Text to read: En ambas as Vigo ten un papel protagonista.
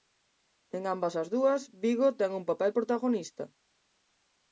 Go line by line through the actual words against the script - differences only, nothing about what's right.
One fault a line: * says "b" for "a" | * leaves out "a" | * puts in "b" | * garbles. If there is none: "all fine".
* puts in "dúas"